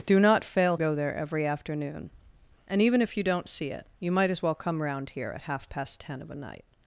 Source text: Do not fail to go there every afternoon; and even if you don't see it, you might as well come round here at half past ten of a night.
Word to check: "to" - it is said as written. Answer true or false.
false